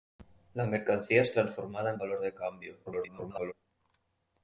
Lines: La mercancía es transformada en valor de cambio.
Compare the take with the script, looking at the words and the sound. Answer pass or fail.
fail